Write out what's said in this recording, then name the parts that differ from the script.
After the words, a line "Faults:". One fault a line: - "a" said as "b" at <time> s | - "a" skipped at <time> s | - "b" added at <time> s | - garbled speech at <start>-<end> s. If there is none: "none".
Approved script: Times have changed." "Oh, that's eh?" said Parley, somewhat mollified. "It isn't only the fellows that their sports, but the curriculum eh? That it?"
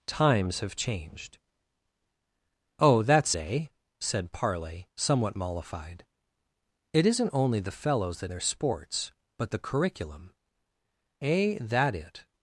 Times have changed." "Oh, that's eh?" said Parley, somewhat mollified. "It isn't only the fellows that their sports, but the curriculum eh? That it?"
Faults:
none